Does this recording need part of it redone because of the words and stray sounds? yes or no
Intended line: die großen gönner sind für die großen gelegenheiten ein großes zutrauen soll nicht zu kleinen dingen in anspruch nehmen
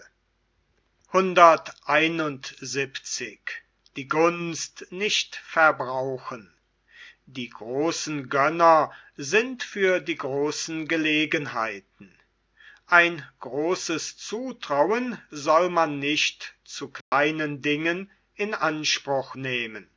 yes